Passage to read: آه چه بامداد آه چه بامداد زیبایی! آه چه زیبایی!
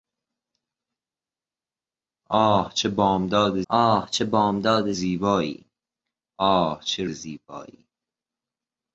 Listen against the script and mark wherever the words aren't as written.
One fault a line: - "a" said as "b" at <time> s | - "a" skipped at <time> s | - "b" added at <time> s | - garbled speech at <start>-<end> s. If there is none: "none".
none